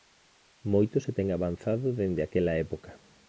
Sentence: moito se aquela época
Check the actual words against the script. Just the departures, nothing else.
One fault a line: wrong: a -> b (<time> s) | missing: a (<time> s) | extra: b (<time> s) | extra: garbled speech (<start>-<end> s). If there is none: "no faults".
extra: ten avanzado dende (1.2 s)